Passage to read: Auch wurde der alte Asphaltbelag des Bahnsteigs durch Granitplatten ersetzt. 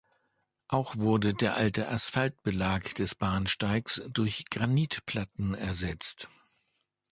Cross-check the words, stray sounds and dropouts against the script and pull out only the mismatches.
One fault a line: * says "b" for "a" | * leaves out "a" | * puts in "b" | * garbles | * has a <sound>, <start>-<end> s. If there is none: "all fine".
all fine